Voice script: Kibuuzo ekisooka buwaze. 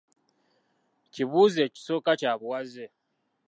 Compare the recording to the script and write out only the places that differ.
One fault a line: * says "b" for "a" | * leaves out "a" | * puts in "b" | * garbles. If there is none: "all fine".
* puts in "kya"